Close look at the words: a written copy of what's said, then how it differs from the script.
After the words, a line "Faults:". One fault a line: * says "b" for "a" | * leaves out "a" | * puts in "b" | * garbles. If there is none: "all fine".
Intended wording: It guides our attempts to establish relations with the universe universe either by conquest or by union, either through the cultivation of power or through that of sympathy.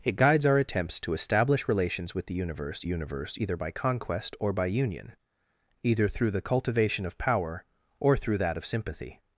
It guides our attempts to establish relations with the universe universe either by conquest or by union, either through the cultivation of power or through that of sympathy.
Faults:
all fine